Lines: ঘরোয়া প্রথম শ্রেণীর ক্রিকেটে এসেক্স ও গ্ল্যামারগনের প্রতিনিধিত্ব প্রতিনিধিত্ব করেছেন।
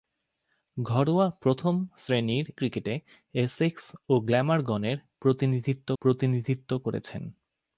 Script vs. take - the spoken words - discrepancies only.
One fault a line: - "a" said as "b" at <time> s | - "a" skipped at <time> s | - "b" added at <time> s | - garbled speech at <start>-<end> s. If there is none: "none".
none